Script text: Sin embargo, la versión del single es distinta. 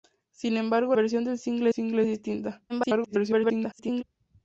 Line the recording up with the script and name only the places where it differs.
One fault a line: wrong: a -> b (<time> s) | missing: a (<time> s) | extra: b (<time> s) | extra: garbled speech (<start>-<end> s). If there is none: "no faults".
missing: la (0.9 s)
extra: single (1.7 s)
extra: garbled speech (2.7-4.0 s)